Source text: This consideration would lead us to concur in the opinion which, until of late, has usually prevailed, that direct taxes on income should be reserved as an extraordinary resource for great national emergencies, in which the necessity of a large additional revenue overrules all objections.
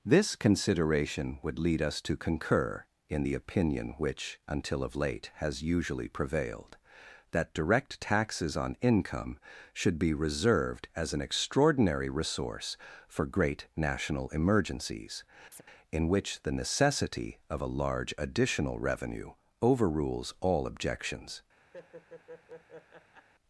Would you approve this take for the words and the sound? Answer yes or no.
no